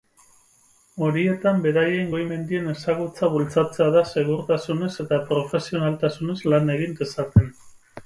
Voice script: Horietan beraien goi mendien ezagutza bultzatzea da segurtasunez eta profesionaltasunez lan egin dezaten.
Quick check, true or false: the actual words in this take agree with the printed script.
true